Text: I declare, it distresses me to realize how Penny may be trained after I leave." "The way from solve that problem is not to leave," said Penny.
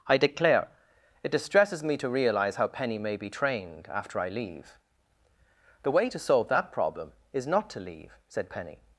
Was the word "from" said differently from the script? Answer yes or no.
yes